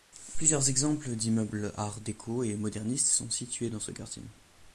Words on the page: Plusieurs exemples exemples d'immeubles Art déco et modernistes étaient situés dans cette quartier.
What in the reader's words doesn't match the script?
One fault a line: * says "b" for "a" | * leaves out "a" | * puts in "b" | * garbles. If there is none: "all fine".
* leaves out "exemples"
* says "sont" for "étaient"
* says "ce" for "cette"